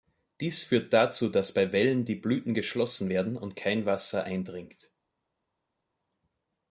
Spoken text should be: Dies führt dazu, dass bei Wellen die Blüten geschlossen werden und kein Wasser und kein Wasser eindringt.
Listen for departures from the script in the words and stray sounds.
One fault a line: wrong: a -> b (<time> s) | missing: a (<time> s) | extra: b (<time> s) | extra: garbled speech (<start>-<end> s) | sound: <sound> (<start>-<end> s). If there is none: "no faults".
missing: und kein Wasser (4.2 s)